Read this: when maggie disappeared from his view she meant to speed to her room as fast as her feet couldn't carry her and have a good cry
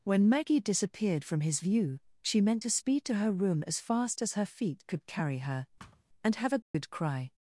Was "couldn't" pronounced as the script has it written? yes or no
no